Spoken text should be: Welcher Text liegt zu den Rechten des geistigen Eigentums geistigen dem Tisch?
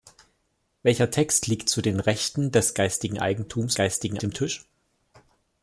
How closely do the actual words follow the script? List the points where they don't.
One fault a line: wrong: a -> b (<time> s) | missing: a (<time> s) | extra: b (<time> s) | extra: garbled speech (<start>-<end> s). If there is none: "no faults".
no faults